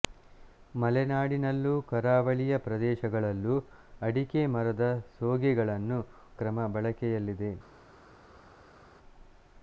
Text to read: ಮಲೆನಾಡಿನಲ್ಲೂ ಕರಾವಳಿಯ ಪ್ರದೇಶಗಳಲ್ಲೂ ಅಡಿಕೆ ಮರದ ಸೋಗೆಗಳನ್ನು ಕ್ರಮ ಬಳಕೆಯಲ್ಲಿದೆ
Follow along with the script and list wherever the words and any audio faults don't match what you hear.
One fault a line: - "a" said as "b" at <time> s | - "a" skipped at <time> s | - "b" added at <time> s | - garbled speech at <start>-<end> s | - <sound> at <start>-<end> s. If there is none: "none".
none